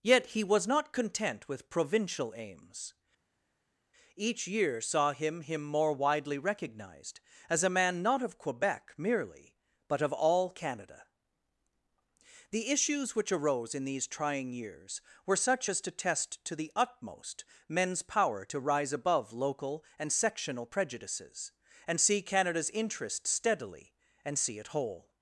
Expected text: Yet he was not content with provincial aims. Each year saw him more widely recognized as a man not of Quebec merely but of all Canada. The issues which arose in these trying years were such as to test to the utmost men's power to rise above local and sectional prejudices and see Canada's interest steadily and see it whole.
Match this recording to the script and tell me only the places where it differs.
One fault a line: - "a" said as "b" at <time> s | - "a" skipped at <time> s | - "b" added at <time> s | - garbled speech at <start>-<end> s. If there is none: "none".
- "him" added at 5.4 s